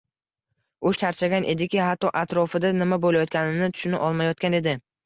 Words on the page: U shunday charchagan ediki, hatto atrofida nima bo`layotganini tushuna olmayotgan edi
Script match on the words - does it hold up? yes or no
no